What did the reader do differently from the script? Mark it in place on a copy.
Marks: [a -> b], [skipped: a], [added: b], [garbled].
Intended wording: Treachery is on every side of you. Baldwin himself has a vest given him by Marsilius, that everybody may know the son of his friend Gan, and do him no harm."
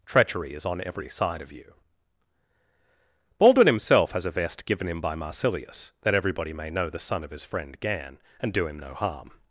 Treachery is on every side of you. Baldwin himself has a vest given him by Marsilius, that everybody may know the son of his friend Gan, and do him no harm."